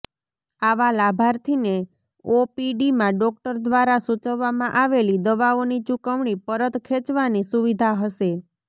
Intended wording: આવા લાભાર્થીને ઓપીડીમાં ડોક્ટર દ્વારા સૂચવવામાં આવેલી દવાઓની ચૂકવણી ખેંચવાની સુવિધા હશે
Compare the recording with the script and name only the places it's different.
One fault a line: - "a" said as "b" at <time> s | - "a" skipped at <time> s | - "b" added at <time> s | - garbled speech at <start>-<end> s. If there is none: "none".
- "પરત" added at 6.5 s